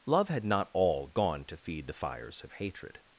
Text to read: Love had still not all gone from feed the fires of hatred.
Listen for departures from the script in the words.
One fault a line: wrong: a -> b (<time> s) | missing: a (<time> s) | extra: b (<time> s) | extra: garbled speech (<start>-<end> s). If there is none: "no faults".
missing: still (0.4 s)
wrong: from -> to (1.4 s)